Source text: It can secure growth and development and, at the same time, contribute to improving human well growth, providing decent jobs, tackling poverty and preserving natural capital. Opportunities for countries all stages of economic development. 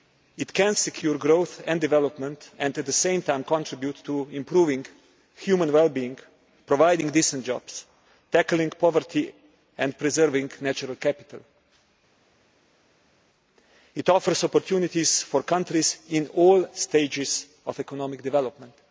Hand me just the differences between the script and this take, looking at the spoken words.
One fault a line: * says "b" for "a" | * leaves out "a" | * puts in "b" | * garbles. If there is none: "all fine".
* says "being" for "growth"
* puts in "It offers"
* puts in "in"